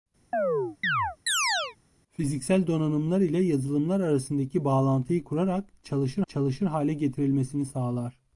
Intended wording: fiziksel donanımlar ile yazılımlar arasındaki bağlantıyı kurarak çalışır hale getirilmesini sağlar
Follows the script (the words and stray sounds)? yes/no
no